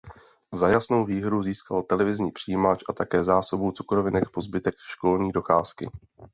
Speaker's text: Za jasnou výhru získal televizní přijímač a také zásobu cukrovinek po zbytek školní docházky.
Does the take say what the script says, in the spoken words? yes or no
yes